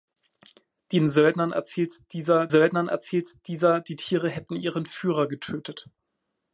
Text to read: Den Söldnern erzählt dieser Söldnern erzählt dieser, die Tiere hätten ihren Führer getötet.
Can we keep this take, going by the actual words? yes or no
yes